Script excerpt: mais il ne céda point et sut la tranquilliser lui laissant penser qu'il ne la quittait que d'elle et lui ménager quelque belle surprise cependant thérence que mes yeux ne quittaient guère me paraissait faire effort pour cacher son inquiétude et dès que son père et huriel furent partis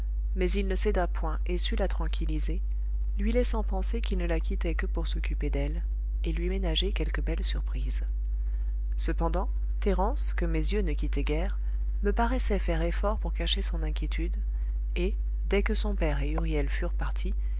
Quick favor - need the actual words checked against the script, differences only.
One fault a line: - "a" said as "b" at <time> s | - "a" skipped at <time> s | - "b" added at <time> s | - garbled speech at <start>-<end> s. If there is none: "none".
- "pour s'occuper" added at 4.9 s